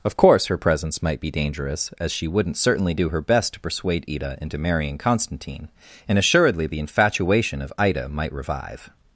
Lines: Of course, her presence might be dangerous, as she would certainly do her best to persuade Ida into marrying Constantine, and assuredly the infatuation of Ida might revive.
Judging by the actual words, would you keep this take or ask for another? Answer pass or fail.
fail